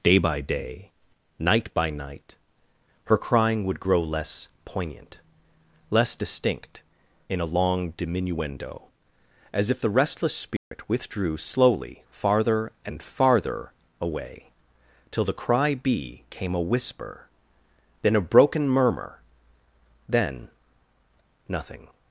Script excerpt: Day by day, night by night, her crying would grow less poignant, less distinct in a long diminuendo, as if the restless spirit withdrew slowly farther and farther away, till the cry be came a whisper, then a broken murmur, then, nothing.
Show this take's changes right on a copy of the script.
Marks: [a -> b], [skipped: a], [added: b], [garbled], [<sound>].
Day by day, night by night, her crying would grow less poignant, less distinct in a long diminuendo, as if the restless spirit [dropout] withdrew slowly farther and farther away, till the cry be came a whisper, then a broken murmur, then, nothing.